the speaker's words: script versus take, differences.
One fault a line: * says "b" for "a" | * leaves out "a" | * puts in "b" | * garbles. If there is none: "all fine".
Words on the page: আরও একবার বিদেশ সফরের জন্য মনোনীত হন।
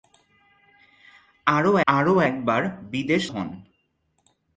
* puts in "আরও"
* leaves out "সফরের জন্য মনোনীত"